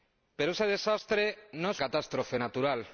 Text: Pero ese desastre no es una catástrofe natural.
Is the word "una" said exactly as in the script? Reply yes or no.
no